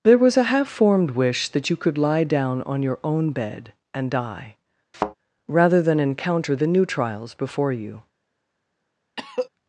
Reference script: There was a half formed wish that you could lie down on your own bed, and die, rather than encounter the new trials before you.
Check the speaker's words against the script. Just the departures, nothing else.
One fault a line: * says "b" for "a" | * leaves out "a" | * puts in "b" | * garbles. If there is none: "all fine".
all fine